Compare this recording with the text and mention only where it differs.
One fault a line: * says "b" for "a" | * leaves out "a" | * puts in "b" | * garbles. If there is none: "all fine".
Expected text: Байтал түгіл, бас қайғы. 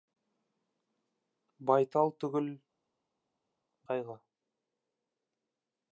* leaves out "бас"